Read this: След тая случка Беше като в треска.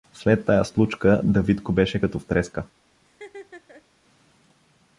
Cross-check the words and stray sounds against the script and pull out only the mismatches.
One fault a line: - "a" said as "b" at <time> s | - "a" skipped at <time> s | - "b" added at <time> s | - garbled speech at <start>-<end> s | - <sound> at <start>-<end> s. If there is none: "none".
- "Давидко" added at 1.2 s
- laugh at 3.0-3.9 s